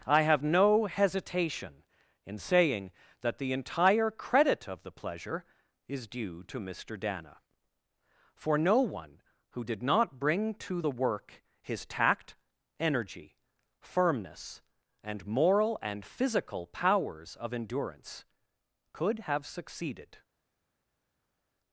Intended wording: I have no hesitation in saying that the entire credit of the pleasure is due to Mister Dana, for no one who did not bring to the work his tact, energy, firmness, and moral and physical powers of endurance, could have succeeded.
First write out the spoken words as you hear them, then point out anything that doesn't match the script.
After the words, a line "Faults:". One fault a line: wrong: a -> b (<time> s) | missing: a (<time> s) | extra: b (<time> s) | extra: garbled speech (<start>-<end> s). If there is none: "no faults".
I have no hesitation in saying that the entire credit of the pleasure is due to Mister Dana, for no one who did not bring to the work his tact, energy, firmness, and moral and physical powers of endurance, could have succeeded.
Faults:
no faults